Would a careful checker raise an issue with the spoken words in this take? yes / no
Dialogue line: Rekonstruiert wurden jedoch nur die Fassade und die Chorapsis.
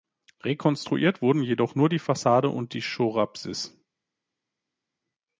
no